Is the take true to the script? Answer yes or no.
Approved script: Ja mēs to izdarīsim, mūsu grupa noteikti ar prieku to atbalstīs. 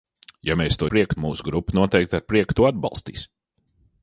no